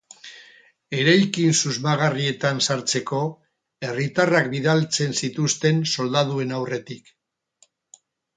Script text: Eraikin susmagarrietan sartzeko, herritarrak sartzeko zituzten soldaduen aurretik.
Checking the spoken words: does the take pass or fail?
fail